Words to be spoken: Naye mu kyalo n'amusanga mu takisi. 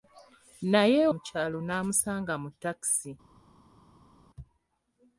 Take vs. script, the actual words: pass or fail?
pass